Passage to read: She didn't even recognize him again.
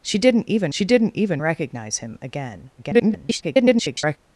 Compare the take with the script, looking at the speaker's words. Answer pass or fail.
fail